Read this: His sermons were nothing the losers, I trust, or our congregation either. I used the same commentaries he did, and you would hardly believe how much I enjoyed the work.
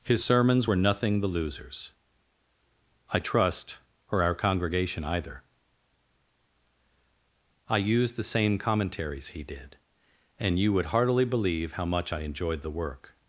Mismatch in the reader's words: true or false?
true